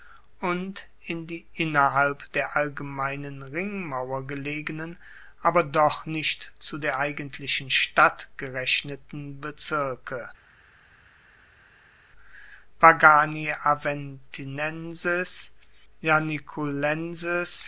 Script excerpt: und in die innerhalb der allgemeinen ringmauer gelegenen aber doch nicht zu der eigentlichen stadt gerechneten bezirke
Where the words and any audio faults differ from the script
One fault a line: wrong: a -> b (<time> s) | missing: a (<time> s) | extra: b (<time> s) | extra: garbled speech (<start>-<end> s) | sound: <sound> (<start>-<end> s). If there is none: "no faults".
no faults